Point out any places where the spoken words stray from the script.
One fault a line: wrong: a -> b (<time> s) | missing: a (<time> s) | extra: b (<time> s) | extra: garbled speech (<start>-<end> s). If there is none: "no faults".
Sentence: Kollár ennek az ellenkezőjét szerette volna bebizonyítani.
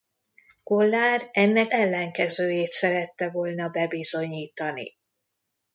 missing: az (1.7 s)